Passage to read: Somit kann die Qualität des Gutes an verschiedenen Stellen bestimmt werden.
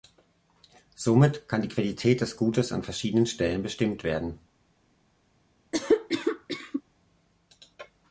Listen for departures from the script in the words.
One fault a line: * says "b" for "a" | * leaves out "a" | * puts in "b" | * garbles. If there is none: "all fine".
all fine